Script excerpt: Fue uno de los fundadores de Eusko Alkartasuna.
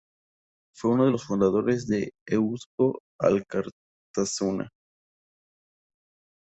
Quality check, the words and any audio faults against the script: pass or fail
pass